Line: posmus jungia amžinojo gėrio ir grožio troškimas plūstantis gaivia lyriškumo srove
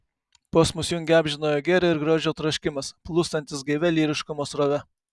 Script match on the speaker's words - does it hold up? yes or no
yes